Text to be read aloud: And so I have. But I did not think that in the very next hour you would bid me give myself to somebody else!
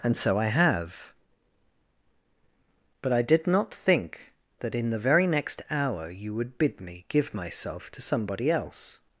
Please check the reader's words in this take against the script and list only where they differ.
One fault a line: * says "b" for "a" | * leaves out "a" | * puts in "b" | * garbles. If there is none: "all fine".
all fine